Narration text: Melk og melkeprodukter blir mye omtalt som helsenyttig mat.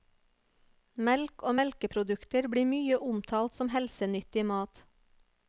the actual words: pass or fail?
pass